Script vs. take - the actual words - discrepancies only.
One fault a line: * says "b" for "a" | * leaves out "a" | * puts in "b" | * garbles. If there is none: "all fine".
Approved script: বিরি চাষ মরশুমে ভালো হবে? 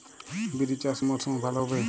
all fine